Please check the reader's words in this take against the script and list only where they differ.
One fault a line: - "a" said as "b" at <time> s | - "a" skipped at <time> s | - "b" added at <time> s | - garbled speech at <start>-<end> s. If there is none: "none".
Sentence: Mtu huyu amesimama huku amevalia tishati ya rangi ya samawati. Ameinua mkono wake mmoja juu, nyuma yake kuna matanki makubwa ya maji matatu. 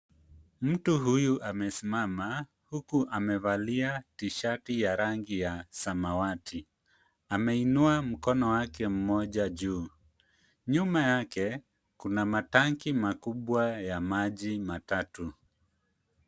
none